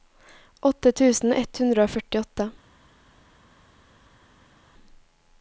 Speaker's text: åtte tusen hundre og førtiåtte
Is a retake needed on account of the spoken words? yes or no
yes